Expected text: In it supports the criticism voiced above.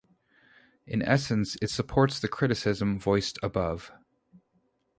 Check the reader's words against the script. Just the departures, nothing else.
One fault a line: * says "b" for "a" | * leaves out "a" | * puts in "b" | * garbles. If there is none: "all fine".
* puts in "essence"